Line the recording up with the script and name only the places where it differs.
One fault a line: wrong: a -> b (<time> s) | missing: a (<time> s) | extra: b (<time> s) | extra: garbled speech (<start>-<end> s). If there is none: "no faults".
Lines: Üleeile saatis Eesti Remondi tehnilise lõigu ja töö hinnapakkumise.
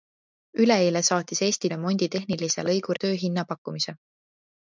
no faults